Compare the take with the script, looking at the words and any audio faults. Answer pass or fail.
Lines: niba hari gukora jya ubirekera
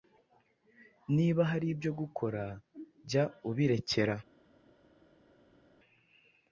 fail